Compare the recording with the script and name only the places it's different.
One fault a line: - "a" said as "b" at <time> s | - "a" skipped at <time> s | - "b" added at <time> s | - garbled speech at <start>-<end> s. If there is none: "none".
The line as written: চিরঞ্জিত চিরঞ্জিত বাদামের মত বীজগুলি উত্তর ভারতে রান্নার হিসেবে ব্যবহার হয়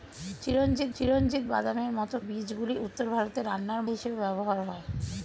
none